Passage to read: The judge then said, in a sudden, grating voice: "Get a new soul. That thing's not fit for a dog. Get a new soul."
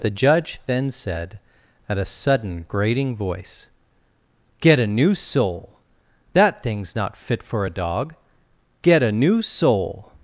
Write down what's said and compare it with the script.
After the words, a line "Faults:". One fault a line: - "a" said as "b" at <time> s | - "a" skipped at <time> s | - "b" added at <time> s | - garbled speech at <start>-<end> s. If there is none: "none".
The judge then said, at a sudden, grating voice: "Get a new soul. That thing's not fit for a dog. Get a new soul."
Faults:
- "in" said as "at" at 1.9 s